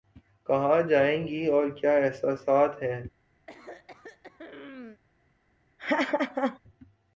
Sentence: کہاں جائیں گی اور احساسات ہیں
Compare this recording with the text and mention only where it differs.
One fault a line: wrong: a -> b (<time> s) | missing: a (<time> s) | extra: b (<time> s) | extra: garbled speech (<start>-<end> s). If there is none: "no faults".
extra: کیا (1.7 s)